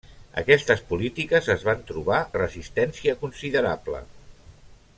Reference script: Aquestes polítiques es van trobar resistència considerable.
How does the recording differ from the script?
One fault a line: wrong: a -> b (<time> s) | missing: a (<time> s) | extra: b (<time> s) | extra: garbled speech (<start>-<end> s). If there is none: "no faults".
no faults